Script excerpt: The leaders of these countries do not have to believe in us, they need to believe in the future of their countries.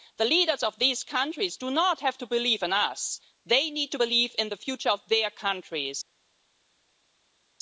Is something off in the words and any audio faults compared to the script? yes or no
no